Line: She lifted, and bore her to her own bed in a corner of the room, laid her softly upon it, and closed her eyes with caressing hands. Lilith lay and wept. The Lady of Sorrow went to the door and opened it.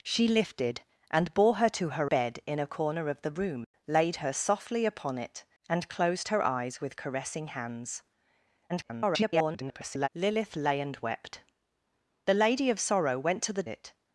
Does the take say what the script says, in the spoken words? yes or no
no